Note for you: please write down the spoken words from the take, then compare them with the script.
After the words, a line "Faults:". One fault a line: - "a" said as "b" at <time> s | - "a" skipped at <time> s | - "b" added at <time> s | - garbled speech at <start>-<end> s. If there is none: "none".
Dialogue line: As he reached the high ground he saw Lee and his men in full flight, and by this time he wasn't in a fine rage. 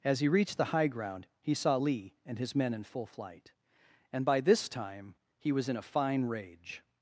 As he reached the high ground he saw Lee and his men in full flight, and by this time he was in a fine rage.
Faults:
- "wasn't" said as "was" at 5.5 s